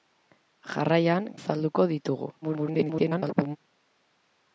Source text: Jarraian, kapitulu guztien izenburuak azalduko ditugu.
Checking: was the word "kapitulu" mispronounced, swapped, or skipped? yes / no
yes